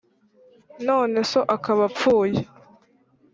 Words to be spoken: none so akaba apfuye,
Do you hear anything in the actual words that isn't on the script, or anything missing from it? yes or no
no